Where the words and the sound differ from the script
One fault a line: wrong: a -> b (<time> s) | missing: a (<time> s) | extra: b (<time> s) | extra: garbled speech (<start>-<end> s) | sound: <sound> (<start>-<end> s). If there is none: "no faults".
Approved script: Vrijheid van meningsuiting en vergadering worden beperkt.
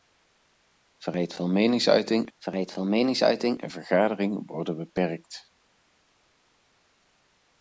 extra: vrijheid van meningsuiting (2.4 s)